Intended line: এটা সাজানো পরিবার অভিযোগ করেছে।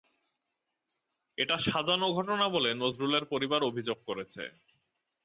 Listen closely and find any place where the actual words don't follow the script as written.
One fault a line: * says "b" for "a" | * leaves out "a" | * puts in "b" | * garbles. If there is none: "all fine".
* puts in "ঘটনা বলে নজরুলের"